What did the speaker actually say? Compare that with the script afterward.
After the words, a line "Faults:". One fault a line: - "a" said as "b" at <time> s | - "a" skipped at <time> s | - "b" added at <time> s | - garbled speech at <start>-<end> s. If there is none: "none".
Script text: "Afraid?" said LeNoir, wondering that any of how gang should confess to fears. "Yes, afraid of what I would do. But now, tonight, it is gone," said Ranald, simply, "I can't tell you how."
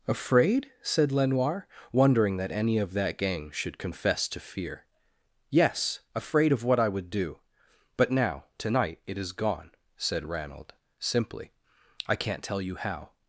"Afraid?" said LeNoir, wondering that any of that gang should confess to fear. "Yes, afraid of what I would do. But now, tonight, it is gone," said Ranald, simply, "I can't tell you how."
Faults:
- "how" said as "that" at 2.9 s
- "fears" said as "fear" at 4.4 s